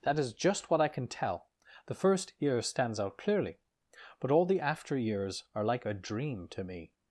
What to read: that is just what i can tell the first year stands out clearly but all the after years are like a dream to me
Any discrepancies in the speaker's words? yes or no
no